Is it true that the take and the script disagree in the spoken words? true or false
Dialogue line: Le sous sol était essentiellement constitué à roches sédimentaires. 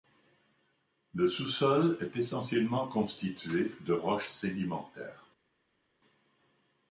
true